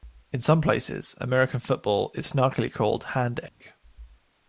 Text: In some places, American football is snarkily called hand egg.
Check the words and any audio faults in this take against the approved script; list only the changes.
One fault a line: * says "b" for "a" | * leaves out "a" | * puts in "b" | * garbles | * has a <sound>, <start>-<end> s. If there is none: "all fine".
* has a dropout, 3.5-3.6 s